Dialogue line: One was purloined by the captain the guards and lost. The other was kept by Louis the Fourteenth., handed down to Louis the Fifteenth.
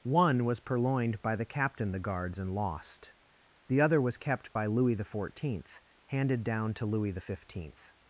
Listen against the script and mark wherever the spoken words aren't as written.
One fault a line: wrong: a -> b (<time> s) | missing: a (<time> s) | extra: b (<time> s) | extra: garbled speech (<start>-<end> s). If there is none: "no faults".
no faults